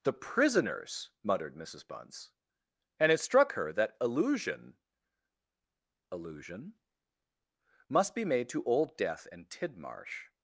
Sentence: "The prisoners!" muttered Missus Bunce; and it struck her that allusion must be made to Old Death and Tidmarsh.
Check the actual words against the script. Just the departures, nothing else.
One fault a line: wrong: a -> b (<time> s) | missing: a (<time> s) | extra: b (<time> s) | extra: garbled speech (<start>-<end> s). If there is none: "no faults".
extra: allusion (6.1 s)